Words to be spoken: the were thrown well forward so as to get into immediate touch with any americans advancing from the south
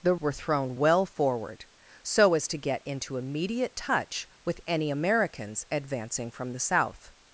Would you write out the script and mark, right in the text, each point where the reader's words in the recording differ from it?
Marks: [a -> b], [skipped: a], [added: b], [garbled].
the were thrown well forward so as to get into immediate touch with any americans advancing from the south